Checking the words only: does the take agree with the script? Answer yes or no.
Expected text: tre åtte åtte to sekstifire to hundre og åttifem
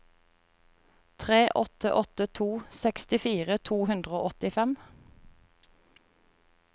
yes